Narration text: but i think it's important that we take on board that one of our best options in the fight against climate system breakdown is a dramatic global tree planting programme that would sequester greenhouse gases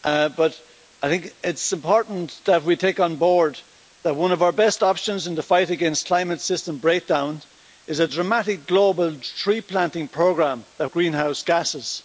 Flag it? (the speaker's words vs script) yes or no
yes